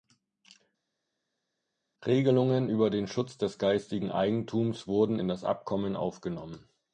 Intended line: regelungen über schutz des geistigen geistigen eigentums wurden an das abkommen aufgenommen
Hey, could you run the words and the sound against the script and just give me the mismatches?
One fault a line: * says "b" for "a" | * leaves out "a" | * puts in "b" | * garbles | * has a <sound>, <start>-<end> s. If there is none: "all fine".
* puts in "den"
* leaves out "geistigen"
* says "in" for "an"